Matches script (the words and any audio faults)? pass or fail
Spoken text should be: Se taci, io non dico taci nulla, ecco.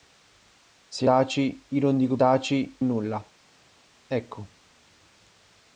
pass